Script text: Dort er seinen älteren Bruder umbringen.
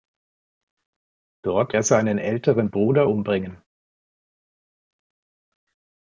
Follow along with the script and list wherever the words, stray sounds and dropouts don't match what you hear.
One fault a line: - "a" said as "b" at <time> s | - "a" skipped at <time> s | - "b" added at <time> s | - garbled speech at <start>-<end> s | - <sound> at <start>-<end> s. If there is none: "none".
none